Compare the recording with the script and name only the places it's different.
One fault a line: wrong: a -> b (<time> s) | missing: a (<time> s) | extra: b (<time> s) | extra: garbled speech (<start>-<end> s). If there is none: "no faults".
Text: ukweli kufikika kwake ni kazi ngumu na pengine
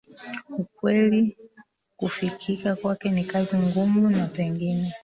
no faults